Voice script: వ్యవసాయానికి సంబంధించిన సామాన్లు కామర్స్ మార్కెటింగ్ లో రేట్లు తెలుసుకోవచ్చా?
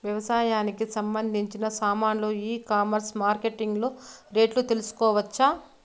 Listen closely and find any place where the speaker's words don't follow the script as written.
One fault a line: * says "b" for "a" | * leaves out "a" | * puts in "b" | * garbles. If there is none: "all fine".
* puts in "ఈ"